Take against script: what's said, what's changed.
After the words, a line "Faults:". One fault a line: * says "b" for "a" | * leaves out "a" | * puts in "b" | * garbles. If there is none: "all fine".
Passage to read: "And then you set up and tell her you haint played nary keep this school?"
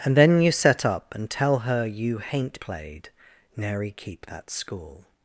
"And then you set up and tell her you haint played nary keep that school?"
Faults:
* says "that" for "this"